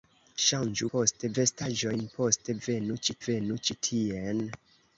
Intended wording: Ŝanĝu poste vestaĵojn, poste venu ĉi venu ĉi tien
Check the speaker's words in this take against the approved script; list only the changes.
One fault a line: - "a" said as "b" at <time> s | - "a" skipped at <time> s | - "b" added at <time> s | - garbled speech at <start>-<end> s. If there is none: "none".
none